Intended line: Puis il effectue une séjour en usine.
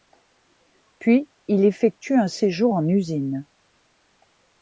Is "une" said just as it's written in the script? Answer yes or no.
no